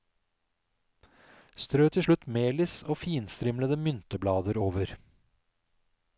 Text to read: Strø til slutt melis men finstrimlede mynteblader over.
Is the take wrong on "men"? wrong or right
wrong